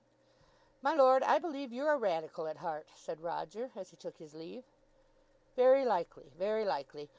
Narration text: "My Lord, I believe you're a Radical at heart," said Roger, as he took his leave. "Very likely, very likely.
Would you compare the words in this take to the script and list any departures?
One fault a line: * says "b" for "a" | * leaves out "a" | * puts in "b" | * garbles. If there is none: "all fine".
all fine